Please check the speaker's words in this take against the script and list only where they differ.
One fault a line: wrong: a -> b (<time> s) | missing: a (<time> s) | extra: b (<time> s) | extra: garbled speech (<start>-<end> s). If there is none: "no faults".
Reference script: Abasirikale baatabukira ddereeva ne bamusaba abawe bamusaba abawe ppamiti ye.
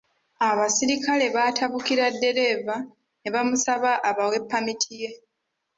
missing: bamusaba abawe (4.4 s)